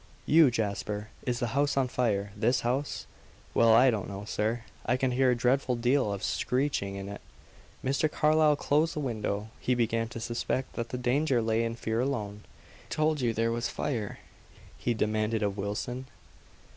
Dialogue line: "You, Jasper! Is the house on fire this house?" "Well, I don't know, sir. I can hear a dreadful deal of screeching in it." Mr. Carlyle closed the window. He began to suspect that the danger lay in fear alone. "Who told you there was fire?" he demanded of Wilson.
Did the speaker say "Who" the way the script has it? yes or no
no